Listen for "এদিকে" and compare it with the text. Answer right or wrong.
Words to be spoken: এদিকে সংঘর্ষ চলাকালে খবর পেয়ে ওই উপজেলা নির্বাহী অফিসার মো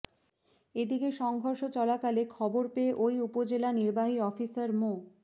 right